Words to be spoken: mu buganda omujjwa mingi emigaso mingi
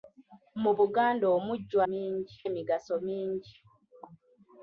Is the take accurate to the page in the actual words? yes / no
yes